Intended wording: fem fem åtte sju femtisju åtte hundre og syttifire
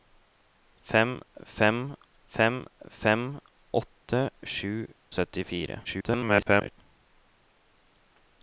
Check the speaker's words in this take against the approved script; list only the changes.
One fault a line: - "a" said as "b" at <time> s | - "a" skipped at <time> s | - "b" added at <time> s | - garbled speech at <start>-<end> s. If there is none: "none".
- "åtte sju femtisju" said as "fem fem" at 2.4 s
- "hundre" said as "sju" at 4.5 s
- garbled speech at 5.8-6.8 s